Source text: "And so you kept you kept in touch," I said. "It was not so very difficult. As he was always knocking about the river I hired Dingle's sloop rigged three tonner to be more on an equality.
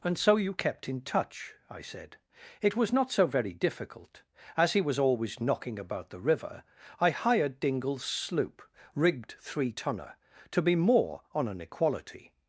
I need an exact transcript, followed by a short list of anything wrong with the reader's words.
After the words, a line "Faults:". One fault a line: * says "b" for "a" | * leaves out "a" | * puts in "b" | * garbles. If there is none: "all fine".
"And so you kept in touch," I said. "It was not so very difficult. As he was always knocking about the river I hired Dingle's sloop rigged three tonner to be more on an equality.
Faults:
* leaves out "you kept"